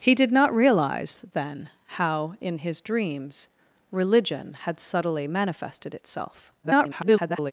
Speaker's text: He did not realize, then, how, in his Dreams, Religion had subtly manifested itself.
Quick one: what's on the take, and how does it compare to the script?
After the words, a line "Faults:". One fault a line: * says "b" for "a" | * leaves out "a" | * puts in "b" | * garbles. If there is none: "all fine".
He did not realize, then, how, in his Dreams, Religion had subtly manifested itself. [garbled]
Faults:
* garbles